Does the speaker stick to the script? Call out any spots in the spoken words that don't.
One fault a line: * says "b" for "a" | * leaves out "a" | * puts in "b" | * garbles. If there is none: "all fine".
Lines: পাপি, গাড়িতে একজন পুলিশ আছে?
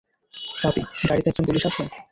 all fine